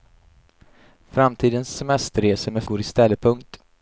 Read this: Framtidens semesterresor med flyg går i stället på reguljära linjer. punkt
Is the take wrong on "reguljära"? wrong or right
wrong